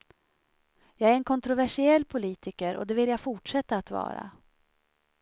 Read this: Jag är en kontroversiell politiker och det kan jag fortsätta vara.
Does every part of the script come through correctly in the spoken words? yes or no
no